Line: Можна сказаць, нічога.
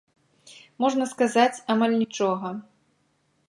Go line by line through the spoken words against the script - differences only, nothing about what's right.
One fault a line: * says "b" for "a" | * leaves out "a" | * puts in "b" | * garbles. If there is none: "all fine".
* puts in "амаль"